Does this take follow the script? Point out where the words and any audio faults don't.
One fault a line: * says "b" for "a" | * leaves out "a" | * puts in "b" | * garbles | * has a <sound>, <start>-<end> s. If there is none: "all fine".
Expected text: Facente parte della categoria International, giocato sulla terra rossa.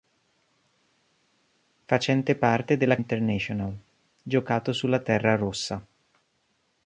* leaves out "categoria"